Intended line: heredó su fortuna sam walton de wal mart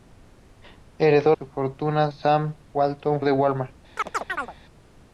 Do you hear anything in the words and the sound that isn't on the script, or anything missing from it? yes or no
yes